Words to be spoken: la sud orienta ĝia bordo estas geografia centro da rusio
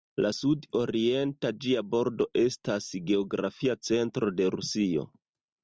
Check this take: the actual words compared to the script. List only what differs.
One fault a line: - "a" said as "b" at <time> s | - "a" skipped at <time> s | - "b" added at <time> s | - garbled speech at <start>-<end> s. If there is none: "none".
- "da" said as "de" at 4.4 s